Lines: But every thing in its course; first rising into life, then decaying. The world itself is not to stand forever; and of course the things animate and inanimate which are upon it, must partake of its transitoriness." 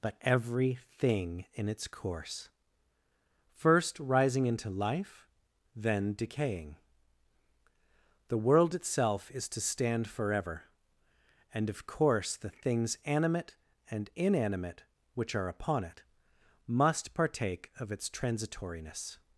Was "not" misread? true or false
true